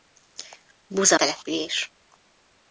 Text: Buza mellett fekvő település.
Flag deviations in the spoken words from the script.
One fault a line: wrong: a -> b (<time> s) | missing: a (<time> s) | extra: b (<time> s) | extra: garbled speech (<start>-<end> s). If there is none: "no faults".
missing: mellett fekvő (1.2 s)